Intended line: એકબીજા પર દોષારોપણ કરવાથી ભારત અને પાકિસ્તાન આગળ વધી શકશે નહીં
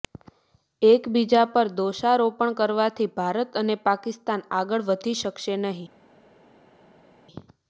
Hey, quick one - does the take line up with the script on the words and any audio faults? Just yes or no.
yes